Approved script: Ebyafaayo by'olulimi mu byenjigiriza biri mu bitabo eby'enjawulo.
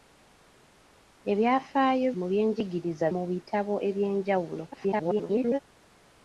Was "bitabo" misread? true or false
false